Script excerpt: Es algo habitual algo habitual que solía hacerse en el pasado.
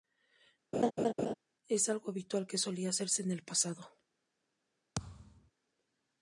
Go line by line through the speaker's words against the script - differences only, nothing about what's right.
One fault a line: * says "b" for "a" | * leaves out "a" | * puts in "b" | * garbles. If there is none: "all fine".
* leaves out "algo habitual"